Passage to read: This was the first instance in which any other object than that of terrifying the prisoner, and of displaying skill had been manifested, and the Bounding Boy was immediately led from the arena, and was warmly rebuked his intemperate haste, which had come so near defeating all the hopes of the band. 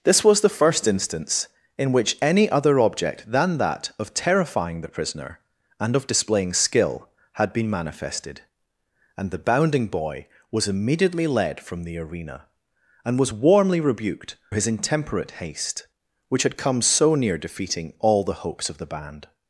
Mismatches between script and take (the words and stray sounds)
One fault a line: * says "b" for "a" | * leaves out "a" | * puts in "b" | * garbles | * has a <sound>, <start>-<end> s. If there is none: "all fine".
all fine